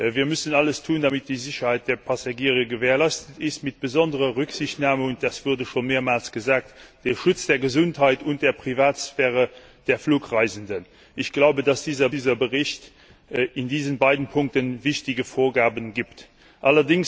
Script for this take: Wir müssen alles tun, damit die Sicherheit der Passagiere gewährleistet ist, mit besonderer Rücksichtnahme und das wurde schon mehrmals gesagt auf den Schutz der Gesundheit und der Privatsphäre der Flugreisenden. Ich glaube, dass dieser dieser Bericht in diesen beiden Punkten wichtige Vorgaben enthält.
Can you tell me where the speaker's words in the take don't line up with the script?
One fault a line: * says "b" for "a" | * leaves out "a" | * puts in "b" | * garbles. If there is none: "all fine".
all fine